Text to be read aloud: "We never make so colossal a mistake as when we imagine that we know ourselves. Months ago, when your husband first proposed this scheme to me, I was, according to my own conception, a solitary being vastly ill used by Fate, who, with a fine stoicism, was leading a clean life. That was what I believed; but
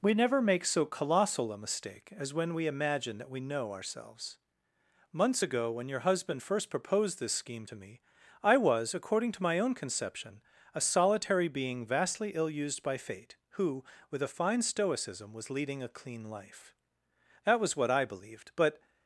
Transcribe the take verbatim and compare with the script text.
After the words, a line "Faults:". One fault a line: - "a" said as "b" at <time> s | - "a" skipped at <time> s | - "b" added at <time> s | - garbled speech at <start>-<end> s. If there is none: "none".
"We never make so colossal a mistake as when we imagine that we know ourselves. Months ago, when your husband first proposed this scheme to me, I was, according to my own conception, a solitary being vastly ill used by Fate, who, with a fine stoicism, was leading a clean life. That was what I believed; but
Faults:
none